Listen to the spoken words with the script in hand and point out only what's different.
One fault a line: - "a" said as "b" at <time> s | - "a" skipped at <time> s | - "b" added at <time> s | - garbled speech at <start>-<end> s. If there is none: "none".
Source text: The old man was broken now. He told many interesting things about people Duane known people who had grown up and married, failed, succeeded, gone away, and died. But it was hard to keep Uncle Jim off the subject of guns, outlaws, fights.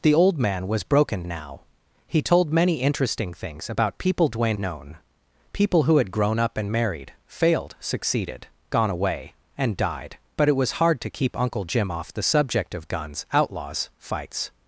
none